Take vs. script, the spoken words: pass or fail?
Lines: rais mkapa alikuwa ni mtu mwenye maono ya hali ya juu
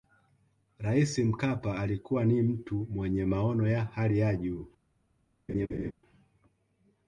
pass